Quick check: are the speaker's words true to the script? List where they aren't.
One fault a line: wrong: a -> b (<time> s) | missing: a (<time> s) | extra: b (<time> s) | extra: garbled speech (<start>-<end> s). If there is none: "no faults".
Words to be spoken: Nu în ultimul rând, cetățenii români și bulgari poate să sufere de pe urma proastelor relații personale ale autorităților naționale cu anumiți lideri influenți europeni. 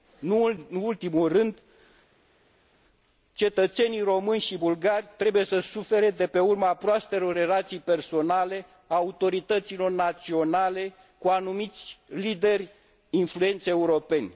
wrong: poate -> trebuie (5.2 s)